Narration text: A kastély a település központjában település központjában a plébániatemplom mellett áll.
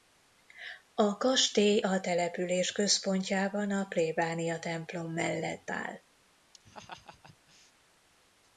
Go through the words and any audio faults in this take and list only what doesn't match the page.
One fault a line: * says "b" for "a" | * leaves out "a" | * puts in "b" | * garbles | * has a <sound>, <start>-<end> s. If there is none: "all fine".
* leaves out "település központjában"
* has a laugh, 6.5-7.7 s